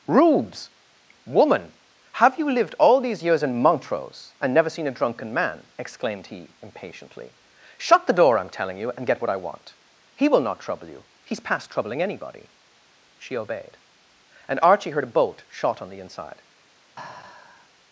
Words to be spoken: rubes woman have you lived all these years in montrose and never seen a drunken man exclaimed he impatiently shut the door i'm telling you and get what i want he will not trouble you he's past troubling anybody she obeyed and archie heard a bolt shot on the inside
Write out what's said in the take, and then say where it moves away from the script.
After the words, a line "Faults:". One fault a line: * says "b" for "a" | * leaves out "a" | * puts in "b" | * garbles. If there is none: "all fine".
rubes woman have you lived all these years in montrose and never seen a drunken man exclaimed he impatiently shut the door i'm telling you and get what i want he will not trouble you he's past troubling anybody she obeyed and archie heard a bolt shot on the inside
Faults:
all fine